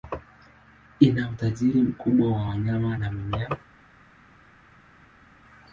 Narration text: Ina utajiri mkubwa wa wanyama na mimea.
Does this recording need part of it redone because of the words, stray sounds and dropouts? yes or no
no